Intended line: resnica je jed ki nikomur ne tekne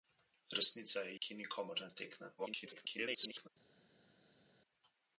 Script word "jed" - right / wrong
wrong